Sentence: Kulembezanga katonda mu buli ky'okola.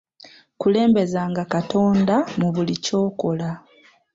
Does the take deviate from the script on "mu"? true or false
false